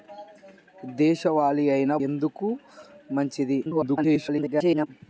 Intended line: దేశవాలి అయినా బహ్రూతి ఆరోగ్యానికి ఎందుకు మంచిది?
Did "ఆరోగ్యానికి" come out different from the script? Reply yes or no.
yes